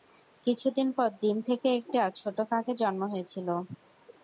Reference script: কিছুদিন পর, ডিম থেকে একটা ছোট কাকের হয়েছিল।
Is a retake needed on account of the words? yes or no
yes